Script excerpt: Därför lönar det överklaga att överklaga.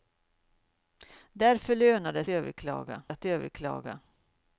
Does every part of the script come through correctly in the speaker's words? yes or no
yes